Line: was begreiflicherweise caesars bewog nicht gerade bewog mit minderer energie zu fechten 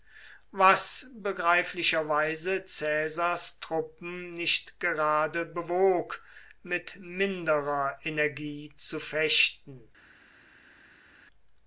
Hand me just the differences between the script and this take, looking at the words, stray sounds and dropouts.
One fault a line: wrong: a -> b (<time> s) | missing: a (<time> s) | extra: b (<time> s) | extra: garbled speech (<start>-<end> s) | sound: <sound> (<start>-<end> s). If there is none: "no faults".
wrong: bewog -> truppen (3.6 s)